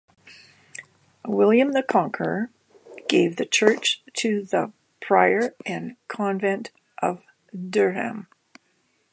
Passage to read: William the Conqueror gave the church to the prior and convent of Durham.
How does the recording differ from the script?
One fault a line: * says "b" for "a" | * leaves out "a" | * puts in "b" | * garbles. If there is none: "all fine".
all fine